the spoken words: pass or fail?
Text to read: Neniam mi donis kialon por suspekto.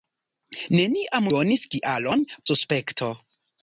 fail